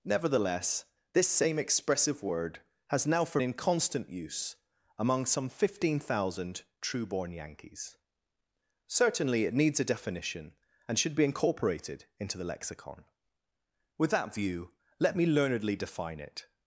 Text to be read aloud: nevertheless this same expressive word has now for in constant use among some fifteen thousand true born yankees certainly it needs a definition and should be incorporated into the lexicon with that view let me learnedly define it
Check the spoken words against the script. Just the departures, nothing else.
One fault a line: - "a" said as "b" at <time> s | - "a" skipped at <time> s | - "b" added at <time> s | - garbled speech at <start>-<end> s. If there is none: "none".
none